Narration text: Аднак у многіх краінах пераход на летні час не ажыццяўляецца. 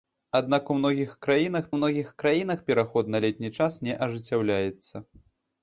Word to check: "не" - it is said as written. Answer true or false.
true